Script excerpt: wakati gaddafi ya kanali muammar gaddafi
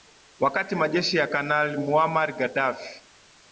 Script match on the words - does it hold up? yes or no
no